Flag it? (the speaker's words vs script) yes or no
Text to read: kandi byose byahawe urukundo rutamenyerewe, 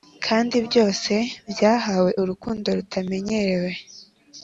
no